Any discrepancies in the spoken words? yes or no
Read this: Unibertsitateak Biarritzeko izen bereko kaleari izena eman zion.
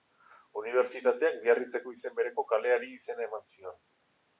no